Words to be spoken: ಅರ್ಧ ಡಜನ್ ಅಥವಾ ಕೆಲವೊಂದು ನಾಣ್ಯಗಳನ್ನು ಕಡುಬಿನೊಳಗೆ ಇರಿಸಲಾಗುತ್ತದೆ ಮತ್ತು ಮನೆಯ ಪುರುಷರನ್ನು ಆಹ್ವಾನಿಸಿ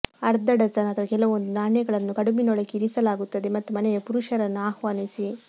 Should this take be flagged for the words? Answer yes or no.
no